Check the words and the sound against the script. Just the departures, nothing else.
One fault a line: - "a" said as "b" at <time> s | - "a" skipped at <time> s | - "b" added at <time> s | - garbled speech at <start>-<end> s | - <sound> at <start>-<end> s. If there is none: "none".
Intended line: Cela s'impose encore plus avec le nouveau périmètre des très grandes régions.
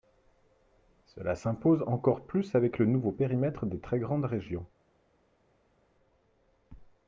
none